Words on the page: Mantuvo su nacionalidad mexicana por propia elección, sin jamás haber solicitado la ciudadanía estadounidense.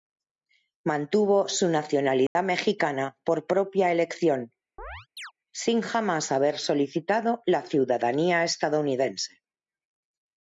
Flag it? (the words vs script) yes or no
no